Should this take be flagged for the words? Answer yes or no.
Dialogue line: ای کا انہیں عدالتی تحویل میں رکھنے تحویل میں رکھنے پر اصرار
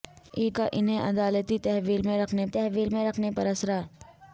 no